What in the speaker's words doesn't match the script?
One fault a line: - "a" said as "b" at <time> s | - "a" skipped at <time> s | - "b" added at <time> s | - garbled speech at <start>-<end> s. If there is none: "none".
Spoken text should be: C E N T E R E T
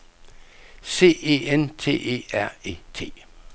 none